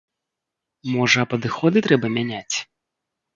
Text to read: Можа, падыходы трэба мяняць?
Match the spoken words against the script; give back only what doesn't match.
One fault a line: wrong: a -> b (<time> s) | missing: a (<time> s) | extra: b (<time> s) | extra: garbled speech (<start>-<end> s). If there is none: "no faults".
no faults